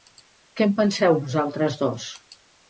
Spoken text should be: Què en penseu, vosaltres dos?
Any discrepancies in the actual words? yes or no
no